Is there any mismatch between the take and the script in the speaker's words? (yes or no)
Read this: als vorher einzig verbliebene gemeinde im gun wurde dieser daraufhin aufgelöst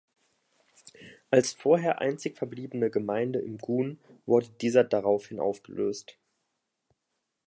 no